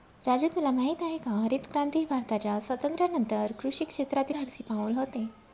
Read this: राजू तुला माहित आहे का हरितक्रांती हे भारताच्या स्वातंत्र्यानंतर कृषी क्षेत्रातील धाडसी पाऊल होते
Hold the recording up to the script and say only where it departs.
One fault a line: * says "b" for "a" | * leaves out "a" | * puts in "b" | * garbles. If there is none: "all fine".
all fine